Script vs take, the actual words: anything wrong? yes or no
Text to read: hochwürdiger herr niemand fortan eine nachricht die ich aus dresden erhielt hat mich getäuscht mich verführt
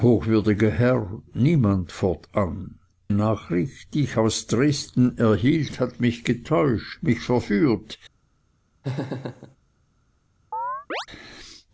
yes